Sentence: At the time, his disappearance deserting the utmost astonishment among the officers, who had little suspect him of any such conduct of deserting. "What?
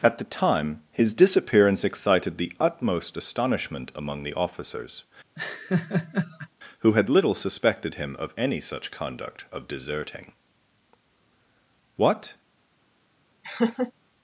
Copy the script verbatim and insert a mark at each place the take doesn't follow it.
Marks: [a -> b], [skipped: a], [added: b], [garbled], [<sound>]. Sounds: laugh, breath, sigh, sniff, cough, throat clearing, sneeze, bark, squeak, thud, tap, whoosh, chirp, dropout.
At the time, his disappearance [deserting -> excited] the utmost astonishment among the officers, [laugh] who had little [suspect -> suspected] him of any such conduct of deserting. "What? [laugh]